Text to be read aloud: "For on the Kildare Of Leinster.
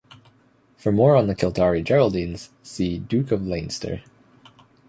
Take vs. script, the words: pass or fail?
fail